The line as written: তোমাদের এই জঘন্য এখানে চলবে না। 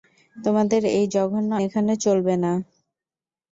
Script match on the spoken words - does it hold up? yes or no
yes